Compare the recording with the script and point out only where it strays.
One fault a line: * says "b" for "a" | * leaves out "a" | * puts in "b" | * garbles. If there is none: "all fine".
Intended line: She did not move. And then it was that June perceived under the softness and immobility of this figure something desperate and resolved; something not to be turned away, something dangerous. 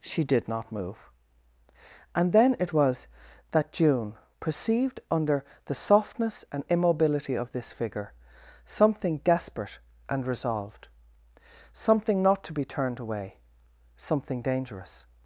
all fine